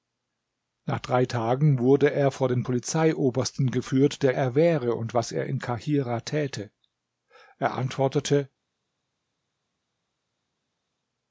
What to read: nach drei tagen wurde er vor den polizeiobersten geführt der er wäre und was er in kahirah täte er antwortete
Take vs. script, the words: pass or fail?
pass